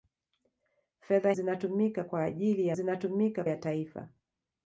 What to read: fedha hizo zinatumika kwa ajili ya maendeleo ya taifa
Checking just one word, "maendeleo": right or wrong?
wrong